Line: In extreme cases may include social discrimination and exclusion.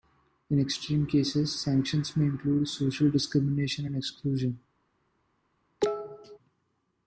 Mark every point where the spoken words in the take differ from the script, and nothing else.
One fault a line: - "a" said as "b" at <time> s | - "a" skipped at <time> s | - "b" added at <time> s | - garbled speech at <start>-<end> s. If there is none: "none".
- "sanctions" added at 1.6 s